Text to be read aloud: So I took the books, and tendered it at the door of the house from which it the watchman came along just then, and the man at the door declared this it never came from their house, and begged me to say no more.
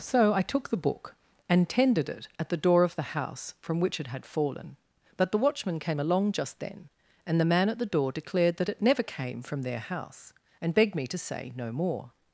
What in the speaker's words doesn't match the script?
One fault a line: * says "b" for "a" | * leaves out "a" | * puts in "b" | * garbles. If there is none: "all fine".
* says "book" for "books"
* puts in "had fallen but"
* says "that" for "this"